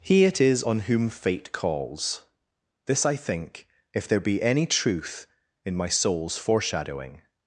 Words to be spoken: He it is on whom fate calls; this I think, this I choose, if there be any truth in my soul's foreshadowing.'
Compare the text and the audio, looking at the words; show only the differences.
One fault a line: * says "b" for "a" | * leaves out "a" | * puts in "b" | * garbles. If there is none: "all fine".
* leaves out "this I choose"